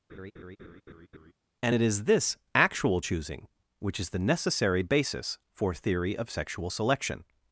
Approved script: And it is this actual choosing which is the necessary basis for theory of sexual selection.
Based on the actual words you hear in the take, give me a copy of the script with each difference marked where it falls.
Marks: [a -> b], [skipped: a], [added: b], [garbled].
And it is this actual choosing which is the necessary basis for theory of sexual selection.